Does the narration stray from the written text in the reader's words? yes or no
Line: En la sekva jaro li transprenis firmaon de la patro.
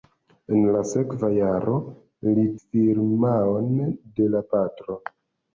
yes